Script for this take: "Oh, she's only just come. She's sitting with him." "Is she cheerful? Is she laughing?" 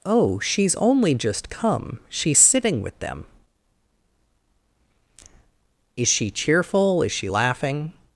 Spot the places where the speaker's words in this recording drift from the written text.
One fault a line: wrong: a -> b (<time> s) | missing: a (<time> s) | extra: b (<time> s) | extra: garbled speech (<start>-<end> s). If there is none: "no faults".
wrong: him -> them (3.0 s)